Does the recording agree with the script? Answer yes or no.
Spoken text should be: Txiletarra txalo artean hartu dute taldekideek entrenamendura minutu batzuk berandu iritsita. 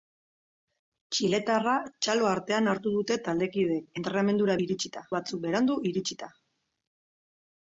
no